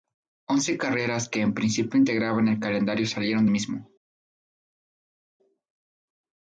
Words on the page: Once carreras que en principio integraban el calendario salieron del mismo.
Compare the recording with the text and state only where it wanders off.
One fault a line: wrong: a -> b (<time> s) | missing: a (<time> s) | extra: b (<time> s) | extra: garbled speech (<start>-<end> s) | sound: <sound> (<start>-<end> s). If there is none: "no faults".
missing: del (3.5 s)